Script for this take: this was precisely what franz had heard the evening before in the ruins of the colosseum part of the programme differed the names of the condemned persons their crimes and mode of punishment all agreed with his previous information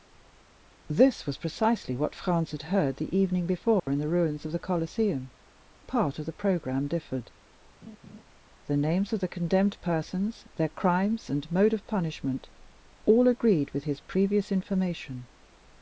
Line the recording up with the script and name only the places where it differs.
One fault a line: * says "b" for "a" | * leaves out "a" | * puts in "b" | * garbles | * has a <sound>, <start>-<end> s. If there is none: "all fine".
* has a dropout, 3.8-3.9 s
* has a laugh, 7.8-8.2 s